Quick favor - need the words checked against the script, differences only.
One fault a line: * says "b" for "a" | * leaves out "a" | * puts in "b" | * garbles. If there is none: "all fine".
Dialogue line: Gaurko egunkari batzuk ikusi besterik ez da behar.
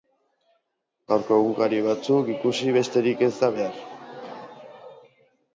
all fine